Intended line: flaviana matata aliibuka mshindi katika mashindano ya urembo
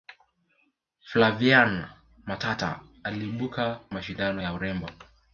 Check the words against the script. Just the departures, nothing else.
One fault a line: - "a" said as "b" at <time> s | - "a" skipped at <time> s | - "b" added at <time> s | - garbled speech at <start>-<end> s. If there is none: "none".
- "mshindi katika" skipped at 3.8 s